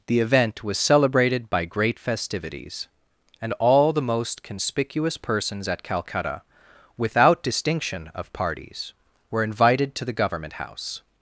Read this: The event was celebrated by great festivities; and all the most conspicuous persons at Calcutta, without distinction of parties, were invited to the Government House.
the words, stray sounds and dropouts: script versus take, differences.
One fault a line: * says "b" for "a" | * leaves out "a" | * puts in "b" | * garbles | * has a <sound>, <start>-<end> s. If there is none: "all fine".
all fine